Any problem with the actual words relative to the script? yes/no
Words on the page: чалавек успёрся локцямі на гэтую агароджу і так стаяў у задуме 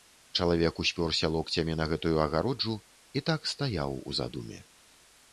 no